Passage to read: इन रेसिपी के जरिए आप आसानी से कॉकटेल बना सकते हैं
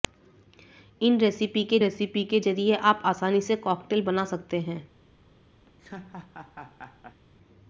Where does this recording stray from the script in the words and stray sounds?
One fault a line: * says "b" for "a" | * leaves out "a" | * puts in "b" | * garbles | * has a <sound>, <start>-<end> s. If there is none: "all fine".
* puts in "रेसिपी के"
* has a laugh, 5.6-7.2 s